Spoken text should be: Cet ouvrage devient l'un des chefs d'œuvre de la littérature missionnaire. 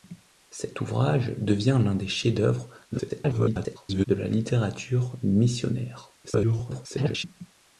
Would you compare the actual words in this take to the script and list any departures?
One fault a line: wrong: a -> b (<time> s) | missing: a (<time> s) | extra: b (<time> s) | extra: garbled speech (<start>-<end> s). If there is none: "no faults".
extra: garbled speech (2.9-4.1 s)
extra: garbled speech (6.2-7.2 s)